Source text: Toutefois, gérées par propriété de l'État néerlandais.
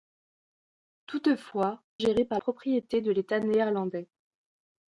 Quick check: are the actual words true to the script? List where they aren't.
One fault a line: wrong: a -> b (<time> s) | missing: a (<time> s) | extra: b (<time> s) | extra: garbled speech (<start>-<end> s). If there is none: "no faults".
no faults